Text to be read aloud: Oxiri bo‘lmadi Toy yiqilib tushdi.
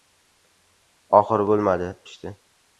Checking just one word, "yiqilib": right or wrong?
wrong